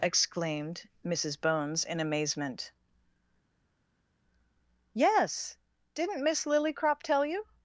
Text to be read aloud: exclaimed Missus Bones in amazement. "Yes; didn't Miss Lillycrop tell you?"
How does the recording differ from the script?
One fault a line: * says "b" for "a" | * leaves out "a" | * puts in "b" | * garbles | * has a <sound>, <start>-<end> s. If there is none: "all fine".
all fine